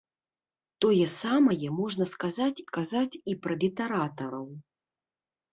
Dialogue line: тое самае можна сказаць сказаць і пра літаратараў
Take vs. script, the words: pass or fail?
pass